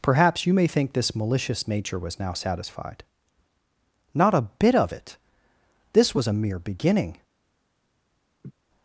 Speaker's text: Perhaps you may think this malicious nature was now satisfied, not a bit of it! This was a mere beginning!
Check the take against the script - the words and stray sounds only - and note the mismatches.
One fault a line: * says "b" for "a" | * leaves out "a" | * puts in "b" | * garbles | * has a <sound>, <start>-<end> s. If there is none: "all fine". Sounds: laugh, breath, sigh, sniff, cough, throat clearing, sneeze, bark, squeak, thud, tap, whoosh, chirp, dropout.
* has a laugh, 8.4-8.5 s